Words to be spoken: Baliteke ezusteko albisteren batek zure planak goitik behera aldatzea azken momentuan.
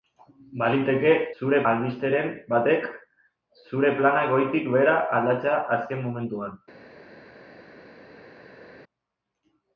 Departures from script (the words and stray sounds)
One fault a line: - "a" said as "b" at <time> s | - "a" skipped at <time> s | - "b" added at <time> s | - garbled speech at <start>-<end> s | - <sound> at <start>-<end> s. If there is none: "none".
- "ezusteko" said as "zure" at 1.4 s